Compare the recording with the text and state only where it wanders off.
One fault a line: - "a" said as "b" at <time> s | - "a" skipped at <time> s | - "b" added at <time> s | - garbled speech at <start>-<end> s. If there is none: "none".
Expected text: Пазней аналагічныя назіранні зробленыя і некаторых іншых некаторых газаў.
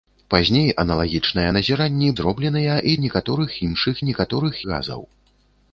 none